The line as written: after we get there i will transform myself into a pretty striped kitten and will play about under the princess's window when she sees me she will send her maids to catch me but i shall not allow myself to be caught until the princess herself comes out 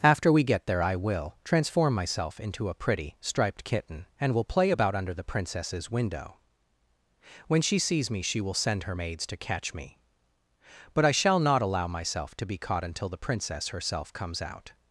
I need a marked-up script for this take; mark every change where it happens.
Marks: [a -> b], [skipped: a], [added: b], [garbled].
after we get there i will transform myself into a pretty striped kitten and will play about under the princess's window when she sees me she will send her maids to catch me but i shall not allow myself to be caught until the princess herself comes out